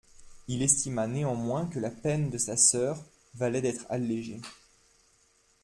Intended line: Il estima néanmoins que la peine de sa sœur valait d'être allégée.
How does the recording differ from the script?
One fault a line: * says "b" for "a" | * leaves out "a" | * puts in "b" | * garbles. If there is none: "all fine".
all fine